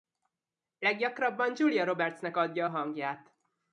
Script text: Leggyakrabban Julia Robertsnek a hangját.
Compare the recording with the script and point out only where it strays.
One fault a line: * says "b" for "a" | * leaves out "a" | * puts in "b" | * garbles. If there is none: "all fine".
* puts in "adja"